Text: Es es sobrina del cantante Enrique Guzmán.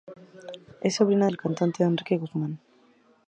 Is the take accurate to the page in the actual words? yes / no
no